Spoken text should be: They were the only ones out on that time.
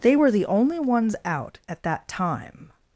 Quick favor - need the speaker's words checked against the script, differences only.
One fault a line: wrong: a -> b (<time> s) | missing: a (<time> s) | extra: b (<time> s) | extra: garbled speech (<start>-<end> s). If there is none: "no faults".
wrong: on -> at (1.7 s)